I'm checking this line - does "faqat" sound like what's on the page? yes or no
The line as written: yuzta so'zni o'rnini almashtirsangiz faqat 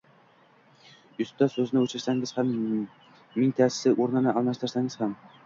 no